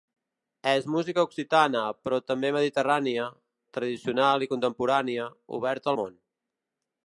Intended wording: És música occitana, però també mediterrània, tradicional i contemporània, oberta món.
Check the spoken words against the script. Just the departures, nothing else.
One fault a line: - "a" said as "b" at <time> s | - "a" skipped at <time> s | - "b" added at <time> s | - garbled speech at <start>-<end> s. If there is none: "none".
none